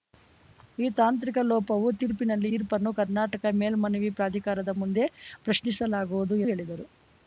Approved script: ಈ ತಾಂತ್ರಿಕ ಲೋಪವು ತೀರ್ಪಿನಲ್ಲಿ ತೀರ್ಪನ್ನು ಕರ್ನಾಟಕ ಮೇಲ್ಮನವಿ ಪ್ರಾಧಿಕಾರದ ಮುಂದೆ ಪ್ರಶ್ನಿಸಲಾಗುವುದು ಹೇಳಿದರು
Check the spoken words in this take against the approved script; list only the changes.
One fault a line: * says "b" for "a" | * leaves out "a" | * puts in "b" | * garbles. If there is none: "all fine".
all fine